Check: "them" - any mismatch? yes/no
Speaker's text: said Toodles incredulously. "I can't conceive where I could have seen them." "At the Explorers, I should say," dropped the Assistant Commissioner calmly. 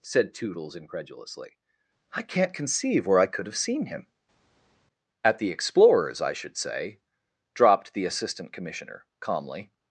yes